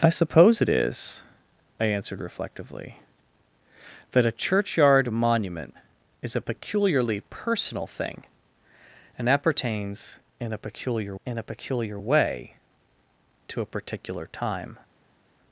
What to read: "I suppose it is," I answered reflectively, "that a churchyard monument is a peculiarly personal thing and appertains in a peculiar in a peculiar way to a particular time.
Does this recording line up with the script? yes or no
yes